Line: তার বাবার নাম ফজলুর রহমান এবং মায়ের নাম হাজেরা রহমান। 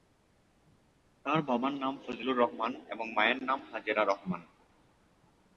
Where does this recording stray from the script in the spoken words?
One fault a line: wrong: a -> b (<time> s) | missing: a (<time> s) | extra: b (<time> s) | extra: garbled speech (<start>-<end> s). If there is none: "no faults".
no faults